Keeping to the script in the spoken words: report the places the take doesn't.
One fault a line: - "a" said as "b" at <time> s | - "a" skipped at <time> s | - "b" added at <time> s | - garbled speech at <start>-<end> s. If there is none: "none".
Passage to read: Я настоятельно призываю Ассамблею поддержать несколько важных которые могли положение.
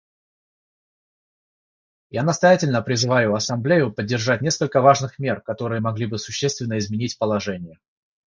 - "мер" added at 5.2 s
- "бы существенно изменить" added at 6.1 s